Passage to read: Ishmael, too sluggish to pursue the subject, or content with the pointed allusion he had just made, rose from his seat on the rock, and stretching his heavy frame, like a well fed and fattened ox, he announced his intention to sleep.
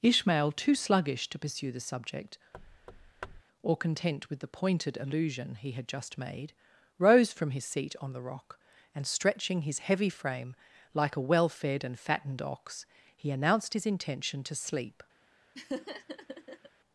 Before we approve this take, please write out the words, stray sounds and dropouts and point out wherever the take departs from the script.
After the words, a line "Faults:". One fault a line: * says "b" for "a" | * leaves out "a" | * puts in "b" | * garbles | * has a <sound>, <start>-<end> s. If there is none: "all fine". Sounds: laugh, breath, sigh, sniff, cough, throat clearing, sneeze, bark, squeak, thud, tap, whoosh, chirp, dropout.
Ishmael, too sluggish to pursue the subject, or content with the pointed allusion he had just made, rose from his seat on the rock, and stretching his heavy frame, like a well fed and fattened ox, he announced his intention to sleep.
Faults:
* has a thud, 2.5-3.4 s
* has a laugh, 15.5-16.7 s